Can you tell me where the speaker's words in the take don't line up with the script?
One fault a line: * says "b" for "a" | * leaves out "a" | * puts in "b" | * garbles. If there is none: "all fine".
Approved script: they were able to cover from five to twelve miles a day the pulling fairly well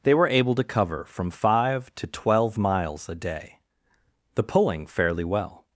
all fine